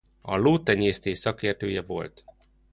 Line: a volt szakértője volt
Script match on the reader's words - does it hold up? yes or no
no